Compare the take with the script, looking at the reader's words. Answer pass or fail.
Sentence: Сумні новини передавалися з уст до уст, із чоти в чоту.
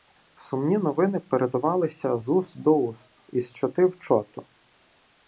pass